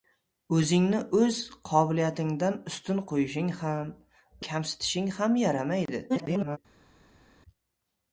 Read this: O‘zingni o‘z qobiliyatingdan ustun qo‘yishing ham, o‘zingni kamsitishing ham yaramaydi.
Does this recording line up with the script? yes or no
no